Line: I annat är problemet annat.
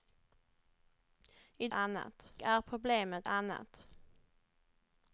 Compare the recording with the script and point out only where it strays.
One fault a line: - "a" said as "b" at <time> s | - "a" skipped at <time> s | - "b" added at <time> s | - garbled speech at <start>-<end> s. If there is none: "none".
none